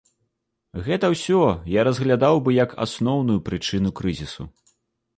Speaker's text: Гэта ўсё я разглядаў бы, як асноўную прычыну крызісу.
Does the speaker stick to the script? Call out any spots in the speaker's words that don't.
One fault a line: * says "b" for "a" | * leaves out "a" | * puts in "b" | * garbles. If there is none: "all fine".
all fine